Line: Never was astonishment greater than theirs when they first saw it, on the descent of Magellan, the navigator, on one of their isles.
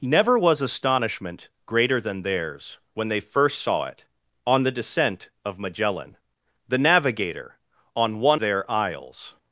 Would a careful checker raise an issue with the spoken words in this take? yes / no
yes